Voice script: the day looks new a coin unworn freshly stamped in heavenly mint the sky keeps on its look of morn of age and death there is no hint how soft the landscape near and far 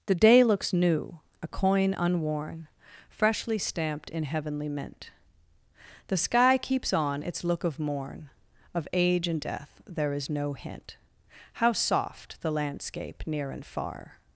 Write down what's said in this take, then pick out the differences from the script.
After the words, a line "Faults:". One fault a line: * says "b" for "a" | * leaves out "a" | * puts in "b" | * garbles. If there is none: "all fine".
the day looks new a coin unworn freshly stamped in heavenly mint the sky keeps on its look of morn of age and death there is no hint how soft the landscape near and far
Faults:
all fine